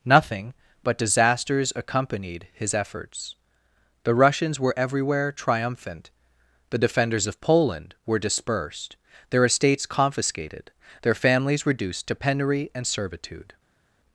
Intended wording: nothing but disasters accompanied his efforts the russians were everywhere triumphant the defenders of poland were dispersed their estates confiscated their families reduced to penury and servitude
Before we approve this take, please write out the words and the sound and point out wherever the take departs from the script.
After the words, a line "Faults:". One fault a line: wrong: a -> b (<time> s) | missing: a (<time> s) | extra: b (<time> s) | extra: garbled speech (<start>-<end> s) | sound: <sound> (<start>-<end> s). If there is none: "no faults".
nothing but disasters accompanied his efforts the russians were everywhere triumphant the defenders of poland were dispersed their estates confiscated their families reduced to penury and servitude
Faults:
no faults